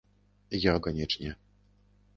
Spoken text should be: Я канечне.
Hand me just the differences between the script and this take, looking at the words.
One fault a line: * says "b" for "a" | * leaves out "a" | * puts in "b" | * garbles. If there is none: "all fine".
all fine